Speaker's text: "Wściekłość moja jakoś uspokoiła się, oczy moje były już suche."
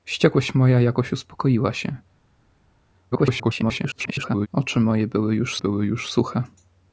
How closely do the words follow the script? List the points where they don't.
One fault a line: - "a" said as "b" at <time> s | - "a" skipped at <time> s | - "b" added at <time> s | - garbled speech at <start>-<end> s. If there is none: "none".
- garbled speech at 3.1-4.5 s
- "były już" added at 5.6 s